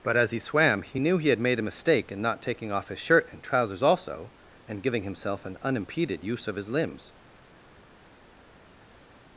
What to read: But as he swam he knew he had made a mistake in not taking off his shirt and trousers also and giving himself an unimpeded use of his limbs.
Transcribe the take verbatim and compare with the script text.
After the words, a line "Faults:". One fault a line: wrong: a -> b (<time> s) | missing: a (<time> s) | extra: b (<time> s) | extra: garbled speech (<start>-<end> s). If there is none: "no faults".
But as he swam he knew he had made a mistake in not taking off his shirt and trousers also and giving himself an unimpeded use of his limbs.
Faults:
no faults